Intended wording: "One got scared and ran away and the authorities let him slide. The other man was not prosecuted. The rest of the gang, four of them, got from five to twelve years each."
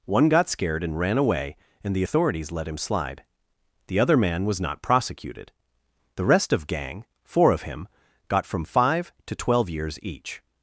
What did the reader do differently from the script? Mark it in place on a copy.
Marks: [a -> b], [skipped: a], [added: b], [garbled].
"One got scared and ran away and the authorities let him slide. The other man was not prosecuted. The rest of [skipped: the] gang, four of [them, -> him] got from five to twelve years each."